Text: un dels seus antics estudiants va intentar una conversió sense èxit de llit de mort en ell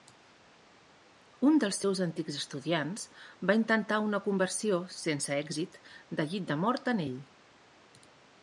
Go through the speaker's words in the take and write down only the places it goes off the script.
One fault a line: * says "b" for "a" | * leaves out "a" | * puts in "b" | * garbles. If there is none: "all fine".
all fine